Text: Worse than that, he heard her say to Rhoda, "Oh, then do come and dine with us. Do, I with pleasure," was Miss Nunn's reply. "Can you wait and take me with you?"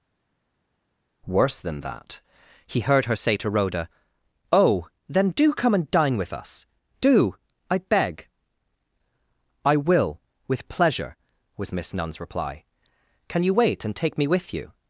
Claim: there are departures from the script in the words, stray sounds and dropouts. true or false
true